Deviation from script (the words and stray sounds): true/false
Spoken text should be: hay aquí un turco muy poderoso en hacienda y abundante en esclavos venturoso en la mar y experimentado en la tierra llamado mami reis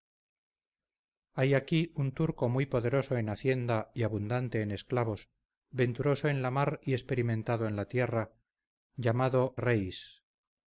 true